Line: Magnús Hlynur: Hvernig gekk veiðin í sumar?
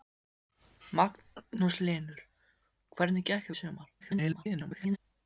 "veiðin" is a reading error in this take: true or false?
true